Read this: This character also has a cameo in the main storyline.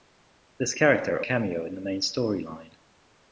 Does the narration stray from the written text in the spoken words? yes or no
yes